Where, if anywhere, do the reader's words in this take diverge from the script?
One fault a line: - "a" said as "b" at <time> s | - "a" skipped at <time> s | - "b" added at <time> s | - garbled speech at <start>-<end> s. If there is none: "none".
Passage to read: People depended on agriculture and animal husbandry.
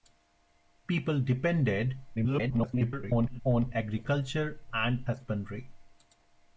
- garbled speech at 2.2-3.4 s
- "animal" skipped at 5.1 s